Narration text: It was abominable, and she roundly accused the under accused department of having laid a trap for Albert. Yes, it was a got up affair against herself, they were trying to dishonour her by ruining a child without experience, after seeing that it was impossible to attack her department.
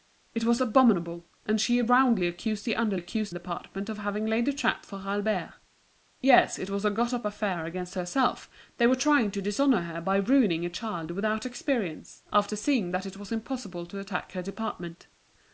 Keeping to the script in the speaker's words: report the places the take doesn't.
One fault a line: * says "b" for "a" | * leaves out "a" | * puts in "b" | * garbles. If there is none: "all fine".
all fine